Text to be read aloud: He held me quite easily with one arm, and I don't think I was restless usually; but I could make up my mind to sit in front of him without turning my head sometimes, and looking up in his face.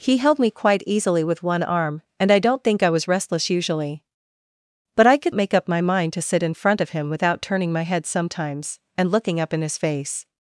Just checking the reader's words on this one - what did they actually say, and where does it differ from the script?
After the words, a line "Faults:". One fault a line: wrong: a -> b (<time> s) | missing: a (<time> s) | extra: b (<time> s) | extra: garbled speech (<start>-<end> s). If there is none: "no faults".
He held me quite easily with one arm, and I don't think I was restless usually; but I could make up my mind to sit in front of him without turning my head sometimes, and looking up in his face.
Faults:
no faults